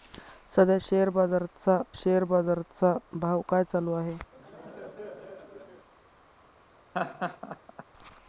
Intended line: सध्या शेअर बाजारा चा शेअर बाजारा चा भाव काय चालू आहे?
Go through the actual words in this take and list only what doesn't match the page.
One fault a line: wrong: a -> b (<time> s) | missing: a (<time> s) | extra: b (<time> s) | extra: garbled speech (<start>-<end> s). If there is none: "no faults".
no faults